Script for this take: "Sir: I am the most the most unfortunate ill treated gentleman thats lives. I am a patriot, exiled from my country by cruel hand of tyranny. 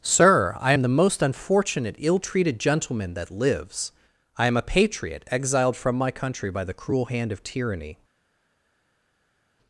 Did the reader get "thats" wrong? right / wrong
wrong